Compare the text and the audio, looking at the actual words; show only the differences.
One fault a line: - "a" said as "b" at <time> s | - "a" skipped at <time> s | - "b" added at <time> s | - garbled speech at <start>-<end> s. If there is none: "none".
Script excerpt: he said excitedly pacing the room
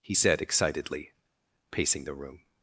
none